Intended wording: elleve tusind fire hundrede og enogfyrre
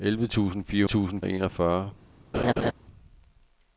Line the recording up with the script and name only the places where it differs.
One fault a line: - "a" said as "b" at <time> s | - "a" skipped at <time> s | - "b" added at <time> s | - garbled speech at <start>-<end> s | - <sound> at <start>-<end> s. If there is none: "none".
- "hundrede" said as "tusind" at 0.8 s
- laugh at 2.3-2.7 s